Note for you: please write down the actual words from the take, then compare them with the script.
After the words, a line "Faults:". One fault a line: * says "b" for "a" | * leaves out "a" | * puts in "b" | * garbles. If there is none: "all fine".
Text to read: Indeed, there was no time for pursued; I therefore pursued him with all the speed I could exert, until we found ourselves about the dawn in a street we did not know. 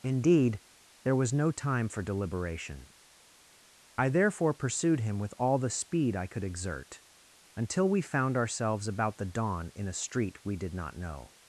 Indeed, there was no time for deliberation; I therefore pursued him with all the speed I could exert, until we found ourselves about the dawn in a street we did not know.
Faults:
* says "deliberation" for "pursued"